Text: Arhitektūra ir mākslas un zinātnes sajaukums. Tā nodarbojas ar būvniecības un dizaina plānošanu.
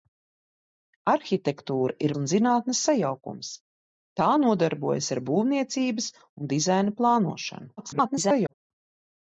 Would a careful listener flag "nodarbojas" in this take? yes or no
no